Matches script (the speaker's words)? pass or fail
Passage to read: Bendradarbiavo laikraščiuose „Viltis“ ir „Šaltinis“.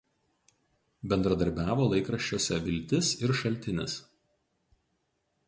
pass